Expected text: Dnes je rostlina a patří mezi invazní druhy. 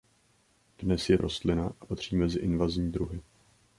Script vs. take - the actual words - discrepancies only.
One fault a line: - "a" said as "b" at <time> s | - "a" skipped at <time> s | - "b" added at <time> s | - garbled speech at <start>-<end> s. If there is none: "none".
none